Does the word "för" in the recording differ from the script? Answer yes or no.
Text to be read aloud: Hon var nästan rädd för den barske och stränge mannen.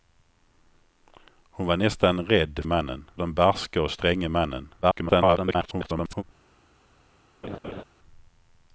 yes